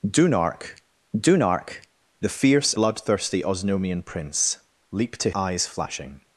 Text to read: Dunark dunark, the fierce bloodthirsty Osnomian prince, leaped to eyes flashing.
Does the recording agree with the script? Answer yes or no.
yes